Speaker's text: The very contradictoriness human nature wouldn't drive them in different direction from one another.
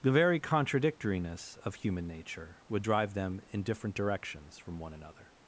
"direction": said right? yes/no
no